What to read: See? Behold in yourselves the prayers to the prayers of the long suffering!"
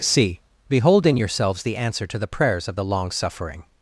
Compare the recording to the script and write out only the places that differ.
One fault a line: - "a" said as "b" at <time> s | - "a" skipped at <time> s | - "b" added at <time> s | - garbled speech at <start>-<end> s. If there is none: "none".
- "prayers" said as "answer" at 1.8 s